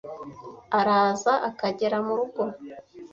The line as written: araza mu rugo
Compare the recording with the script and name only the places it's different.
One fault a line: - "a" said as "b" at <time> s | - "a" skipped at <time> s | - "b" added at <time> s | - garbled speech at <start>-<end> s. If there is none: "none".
- "akagera" added at 1.5 s